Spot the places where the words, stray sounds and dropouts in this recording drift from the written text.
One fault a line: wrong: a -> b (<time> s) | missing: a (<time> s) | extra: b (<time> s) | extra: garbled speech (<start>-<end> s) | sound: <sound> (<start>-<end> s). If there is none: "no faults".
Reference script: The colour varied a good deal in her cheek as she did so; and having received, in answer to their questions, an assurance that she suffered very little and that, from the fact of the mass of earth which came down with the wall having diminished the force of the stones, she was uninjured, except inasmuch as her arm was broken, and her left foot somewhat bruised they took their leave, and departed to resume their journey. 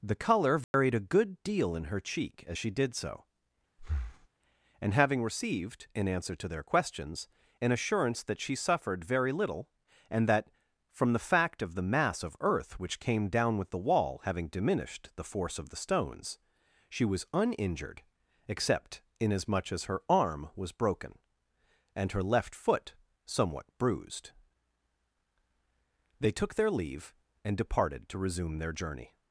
sound: dropout (0.6-0.7 s)
sound: breath (3.8-4.3 s)